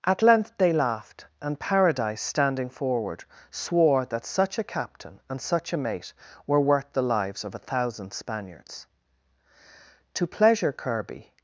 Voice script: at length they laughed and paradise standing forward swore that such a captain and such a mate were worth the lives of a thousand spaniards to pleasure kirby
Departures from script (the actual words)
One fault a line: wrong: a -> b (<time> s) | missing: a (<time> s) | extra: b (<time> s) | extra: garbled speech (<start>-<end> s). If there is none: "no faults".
no faults